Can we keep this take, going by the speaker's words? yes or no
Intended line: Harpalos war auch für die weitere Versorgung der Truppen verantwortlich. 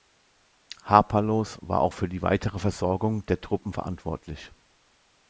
yes